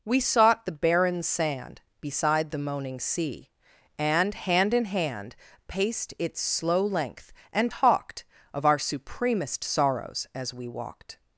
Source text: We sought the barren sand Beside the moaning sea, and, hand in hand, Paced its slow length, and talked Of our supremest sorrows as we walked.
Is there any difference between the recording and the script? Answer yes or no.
no